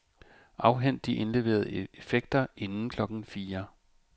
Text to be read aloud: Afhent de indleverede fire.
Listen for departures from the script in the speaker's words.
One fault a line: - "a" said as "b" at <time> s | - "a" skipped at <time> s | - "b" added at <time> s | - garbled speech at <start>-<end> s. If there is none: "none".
- "effekter inden klokken" added at 1.9 s